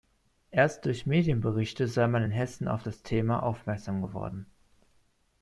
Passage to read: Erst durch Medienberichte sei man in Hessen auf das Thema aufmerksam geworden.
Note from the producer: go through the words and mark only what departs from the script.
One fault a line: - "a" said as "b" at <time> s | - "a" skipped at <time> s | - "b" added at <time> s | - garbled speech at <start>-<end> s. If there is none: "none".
none